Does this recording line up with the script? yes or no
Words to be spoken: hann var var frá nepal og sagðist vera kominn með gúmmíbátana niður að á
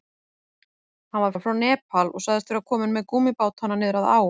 yes